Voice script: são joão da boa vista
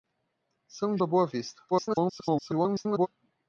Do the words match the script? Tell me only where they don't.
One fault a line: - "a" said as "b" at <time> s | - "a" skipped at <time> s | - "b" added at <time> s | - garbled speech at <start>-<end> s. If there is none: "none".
- "joão" skipped at 1.0 s
- garbled speech at 1.7-3.1 s